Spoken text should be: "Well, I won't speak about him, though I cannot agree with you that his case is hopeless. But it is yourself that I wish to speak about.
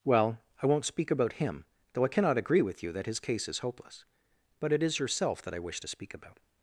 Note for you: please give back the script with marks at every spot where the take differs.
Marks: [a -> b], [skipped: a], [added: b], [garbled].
"Well, I won't speak about him, though I cannot agree with you that his case is hopeless. But it is yourself that I wish to speak about.